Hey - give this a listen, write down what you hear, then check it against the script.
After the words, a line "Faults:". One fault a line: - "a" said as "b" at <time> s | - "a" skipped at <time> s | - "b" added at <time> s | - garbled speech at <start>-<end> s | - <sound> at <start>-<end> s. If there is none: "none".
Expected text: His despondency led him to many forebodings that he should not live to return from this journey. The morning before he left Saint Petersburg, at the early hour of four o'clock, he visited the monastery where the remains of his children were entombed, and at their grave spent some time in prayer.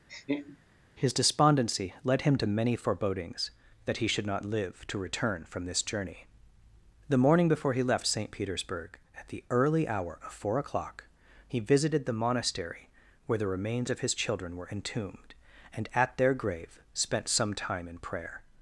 His despondency led him to many forebodings that he should not live to return from this journey. The morning before he left Saint Petersburg, at the early hour of four o'clock, he visited the monastery where the remains of his children were entombed, and at their grave spent some time in prayer.
Faults:
- laugh at 0.1-0.6 s